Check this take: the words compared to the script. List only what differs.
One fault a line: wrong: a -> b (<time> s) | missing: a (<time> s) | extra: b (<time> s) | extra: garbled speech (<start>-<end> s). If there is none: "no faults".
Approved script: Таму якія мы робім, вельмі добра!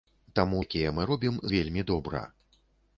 no faults